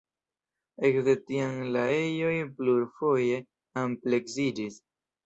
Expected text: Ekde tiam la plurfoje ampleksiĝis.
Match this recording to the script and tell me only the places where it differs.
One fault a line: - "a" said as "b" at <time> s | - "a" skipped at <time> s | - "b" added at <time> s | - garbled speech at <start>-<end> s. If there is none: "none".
- "ejoj" added at 1.9 s